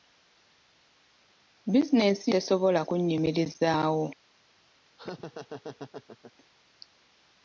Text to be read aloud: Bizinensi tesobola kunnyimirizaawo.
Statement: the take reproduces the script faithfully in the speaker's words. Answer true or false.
true